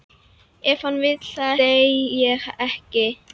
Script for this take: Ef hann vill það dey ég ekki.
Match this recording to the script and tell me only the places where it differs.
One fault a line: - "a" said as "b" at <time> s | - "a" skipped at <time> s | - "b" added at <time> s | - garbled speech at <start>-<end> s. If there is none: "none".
none